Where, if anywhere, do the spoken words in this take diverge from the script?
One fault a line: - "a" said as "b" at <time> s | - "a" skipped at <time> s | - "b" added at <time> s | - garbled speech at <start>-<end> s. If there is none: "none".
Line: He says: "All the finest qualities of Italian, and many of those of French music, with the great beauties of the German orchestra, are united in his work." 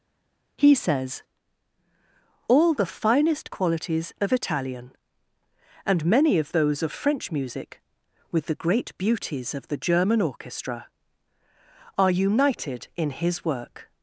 none